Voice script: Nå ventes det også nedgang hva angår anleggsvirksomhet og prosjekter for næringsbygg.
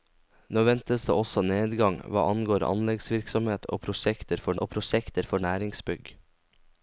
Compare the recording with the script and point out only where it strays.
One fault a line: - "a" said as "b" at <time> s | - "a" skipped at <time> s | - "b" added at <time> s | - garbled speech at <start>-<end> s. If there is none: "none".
- "og prosjekter for" added at 4.6 s